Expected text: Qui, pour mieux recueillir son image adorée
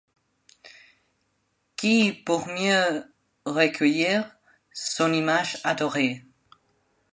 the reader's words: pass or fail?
pass